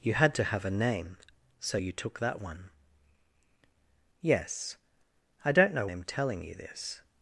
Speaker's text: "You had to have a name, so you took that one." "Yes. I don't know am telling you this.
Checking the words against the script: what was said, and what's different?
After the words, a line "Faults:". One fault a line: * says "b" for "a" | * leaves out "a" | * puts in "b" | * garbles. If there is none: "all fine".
"You had to have a name, so you took that one." "Yes. I don't know am telling you this.
Faults:
all fine